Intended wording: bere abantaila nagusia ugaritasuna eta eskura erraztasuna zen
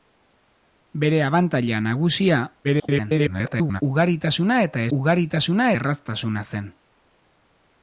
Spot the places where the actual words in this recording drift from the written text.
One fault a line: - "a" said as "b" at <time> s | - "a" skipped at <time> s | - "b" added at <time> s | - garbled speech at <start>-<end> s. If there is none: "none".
- garbled speech at 2.6-3.8 s
- "eskura" said as "ugaritasuna" at 5.0 s